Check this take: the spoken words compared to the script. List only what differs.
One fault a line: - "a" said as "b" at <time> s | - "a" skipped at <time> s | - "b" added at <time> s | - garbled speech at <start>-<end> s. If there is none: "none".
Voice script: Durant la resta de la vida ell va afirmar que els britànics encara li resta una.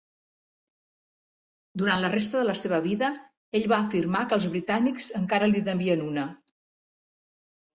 - "seva" added at 2.6 s
- "resta" said as "devien" at 5.7 s